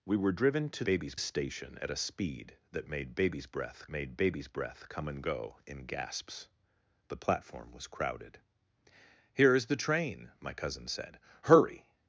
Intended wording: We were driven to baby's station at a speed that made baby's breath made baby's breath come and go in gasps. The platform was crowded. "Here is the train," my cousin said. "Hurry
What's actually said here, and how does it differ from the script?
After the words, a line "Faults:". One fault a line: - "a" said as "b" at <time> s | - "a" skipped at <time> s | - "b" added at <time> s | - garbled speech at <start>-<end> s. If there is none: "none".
We were driven to baby's station at a speed that made baby's breath made baby's breath come and go in gasps. The platform was crowded. "Here is the train," my cousin said. "Hurry
Faults:
none